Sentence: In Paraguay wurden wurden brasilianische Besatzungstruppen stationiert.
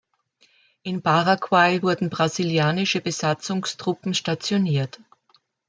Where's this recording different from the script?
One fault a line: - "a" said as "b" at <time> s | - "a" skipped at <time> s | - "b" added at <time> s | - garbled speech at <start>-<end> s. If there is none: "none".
- "wurden" skipped at 2.1 s